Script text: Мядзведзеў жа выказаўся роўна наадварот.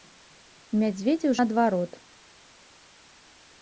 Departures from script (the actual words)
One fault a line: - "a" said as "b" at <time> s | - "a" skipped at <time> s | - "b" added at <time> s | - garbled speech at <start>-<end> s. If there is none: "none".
- "жа выказаўся роўна" skipped at 1.4 s